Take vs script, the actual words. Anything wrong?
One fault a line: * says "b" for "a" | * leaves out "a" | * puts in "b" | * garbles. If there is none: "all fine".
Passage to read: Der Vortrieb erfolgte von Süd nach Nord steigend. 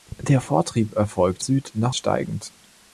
* leaves out "von"
* leaves out "Nord"